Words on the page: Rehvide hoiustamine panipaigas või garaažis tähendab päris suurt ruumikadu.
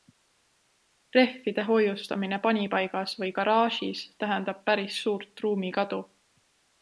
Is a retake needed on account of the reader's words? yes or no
no